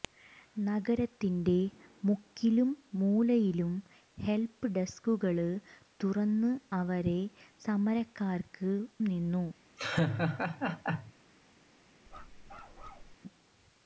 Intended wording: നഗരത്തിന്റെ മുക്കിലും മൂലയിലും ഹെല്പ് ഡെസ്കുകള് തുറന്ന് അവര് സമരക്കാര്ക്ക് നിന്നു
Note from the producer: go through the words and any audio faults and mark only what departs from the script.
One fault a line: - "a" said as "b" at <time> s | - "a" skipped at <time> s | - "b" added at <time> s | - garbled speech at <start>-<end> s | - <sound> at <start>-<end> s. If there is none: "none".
- laugh at 9.8-11.1 s
- bark at 12.1-13.2 s